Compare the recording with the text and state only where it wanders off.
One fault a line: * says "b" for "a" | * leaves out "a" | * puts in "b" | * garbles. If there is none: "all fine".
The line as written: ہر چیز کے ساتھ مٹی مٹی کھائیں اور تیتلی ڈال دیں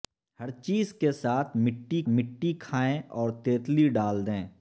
all fine